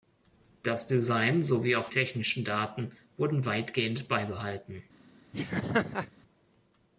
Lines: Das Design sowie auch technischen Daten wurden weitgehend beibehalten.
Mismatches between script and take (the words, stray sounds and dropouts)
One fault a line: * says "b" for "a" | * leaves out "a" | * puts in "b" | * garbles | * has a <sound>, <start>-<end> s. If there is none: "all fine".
* has a laugh, 5.3-6.1 s